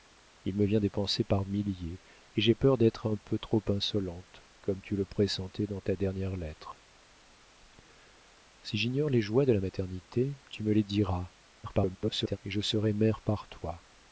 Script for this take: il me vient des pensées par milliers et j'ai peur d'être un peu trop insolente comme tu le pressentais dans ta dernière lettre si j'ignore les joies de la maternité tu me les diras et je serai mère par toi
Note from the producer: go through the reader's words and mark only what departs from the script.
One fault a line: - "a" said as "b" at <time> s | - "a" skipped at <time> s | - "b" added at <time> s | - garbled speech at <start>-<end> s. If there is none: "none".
- garbled speech at 11.6-12.4 s